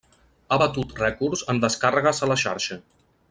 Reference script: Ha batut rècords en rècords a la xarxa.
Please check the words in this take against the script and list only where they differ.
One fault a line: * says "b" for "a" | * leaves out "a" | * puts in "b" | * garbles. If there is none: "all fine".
* says "descàrregues" for "rècords"